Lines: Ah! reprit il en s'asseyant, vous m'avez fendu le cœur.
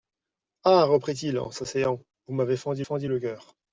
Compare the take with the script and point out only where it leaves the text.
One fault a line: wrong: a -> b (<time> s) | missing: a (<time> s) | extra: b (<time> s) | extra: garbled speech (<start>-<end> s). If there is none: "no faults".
extra: fendu (2.8 s)